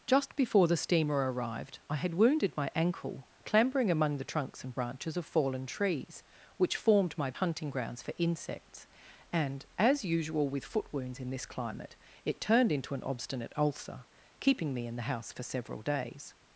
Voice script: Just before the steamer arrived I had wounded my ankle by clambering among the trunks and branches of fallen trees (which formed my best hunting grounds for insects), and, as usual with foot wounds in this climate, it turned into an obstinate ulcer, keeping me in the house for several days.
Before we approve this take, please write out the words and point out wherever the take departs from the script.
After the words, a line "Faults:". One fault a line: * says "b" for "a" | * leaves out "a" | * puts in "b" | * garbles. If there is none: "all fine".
Just before the steamer arrived I had wounded my ankle clambering among the trunks and branches of fallen trees (which formed my hunting grounds for insects), and, as usual with foot wounds in this climate, it turned into an obstinate ulcer, keeping me in the house for several days.
Faults:
* leaves out "by"
* leaves out "best"